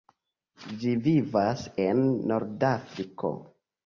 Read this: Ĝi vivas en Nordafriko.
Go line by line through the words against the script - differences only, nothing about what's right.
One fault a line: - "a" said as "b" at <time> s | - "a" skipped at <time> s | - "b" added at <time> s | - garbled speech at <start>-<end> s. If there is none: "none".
none